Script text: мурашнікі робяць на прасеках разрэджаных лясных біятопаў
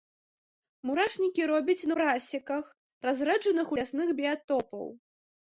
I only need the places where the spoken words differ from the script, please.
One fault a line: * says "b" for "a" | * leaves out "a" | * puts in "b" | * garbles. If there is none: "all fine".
all fine